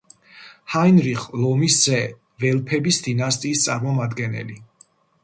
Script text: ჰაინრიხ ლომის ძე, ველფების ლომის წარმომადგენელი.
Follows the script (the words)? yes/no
no